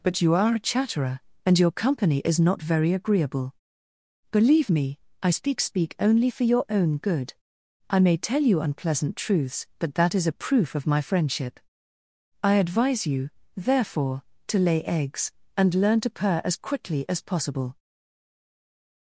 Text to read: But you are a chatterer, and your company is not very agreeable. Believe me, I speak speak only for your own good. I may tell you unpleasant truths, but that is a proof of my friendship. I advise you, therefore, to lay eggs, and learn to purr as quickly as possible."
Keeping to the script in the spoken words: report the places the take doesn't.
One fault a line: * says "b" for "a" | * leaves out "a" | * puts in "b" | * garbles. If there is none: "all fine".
all fine